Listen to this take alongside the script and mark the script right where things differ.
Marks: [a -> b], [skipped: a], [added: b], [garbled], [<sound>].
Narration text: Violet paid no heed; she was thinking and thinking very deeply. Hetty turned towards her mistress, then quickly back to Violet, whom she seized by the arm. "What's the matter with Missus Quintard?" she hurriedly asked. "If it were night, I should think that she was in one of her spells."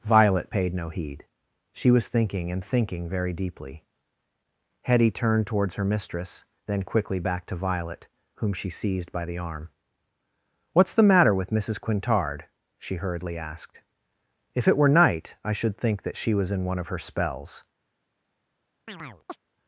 Violet paid no heed; she was thinking and thinking very deeply. Hetty turned towards her mistress, then quickly back to Violet, whom she seized by the arm. "What's the matter with Missus Quintard?" she hurriedly asked. "If it were night, I should think that she was in one of her spells." [chirp]